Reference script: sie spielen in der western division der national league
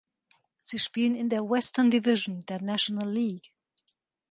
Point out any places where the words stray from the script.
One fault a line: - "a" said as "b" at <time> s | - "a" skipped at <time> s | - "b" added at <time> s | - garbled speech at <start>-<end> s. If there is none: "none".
none